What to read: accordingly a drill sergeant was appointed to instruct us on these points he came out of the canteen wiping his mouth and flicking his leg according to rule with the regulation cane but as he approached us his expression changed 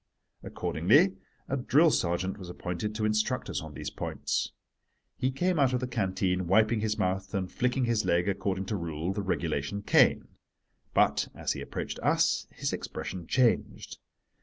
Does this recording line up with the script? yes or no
no